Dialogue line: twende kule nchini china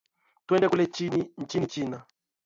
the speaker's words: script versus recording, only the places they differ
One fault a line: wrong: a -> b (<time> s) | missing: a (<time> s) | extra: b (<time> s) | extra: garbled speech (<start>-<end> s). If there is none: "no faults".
no faults